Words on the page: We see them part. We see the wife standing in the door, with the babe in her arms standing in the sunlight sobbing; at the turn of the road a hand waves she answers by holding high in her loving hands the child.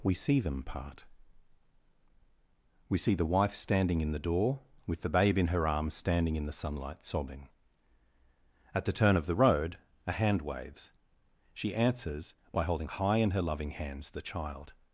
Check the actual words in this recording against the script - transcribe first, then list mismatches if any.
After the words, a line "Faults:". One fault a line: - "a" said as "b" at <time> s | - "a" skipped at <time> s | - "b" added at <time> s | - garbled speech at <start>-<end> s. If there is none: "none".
We see them part. We see the wife standing in the door, with the babe in her arms standing in the sunlight sobbing; at the turn of the road a hand waves she answers by holding high in her loving hands the child.
Faults:
none